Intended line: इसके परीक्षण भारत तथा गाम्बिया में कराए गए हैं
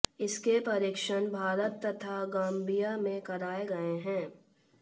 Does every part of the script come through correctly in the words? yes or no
yes